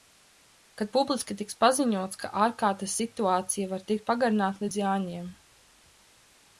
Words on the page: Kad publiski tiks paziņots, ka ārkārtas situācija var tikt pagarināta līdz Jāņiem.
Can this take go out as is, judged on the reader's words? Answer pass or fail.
pass